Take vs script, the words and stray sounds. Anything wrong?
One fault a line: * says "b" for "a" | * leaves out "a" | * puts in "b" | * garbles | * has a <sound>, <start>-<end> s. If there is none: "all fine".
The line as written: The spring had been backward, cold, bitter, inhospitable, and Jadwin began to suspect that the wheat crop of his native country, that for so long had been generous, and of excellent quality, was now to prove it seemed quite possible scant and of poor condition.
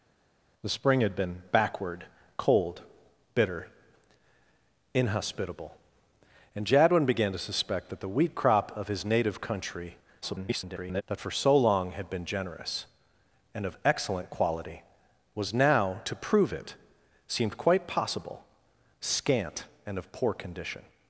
* garbles